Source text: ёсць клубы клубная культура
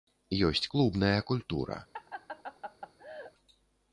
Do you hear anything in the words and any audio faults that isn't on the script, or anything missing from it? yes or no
yes